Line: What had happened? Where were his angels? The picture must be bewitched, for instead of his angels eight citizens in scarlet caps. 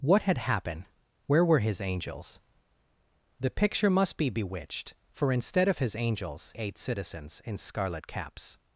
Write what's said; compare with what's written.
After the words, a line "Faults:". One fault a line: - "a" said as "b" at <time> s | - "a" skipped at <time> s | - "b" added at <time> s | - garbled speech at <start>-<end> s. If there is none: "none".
What had happened? Where were his angels? The picture must be bewitched, for instead of his angels eight citizens in scarlet caps.
Faults:
none